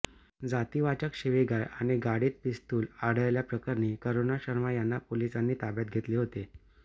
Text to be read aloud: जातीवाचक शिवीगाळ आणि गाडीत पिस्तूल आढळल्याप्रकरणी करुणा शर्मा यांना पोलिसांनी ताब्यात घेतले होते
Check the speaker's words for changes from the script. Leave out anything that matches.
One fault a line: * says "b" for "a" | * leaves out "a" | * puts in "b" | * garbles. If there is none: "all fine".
all fine